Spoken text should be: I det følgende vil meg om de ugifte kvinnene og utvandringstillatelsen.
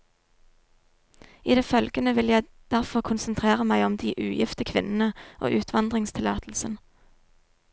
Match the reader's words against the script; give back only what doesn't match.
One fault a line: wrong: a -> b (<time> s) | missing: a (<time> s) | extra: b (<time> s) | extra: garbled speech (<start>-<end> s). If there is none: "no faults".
extra: jeg derfor konsentrere (2.3 s)